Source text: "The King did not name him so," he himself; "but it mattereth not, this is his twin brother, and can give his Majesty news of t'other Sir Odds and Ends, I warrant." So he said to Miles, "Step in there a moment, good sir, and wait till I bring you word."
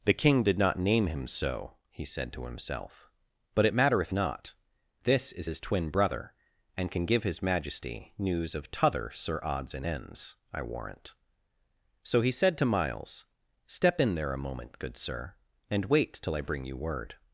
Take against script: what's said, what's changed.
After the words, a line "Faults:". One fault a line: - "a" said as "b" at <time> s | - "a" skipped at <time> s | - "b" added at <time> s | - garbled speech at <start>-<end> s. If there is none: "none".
"The King did not name him so," he said to himself; "but it mattereth not, this is his twin brother, and can give his Majesty news of t'other Sir Odds and Ends, I warrant." So he said to Miles, "Step in there a moment, good sir, and wait till I bring you word."
Faults:
- "said to" added at 2.0 s